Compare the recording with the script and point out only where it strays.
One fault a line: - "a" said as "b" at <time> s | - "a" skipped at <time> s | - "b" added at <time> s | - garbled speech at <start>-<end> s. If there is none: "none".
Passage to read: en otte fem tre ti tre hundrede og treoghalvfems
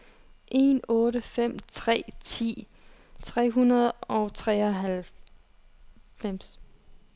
none